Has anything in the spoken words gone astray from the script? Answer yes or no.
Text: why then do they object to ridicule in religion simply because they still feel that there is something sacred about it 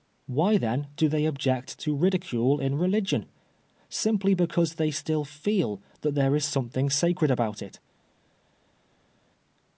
no